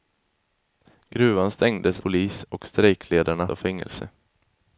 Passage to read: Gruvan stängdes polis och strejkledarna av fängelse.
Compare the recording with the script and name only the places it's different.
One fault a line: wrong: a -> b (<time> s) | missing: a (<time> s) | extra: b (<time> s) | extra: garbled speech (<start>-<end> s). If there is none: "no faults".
no faults